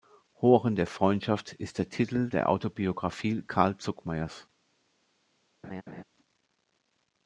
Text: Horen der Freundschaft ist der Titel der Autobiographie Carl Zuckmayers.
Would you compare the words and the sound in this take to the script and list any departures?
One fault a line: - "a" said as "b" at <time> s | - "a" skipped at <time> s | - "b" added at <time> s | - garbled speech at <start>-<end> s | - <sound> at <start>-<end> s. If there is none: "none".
- laugh at 5.6-6.0 s